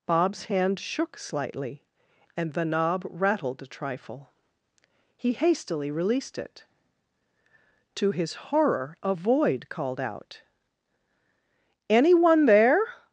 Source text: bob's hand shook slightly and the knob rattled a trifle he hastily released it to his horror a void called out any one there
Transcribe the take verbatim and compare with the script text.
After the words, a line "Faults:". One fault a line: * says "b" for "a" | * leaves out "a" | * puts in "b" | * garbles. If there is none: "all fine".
bob's hand shook slightly and the knob rattled a trifle he hastily released it to his horror a void called out any one there
Faults:
all fine